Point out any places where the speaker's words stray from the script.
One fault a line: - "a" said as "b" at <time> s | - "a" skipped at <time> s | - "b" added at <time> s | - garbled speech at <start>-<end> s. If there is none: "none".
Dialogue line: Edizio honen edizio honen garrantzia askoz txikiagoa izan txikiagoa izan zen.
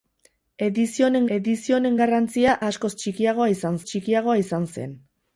none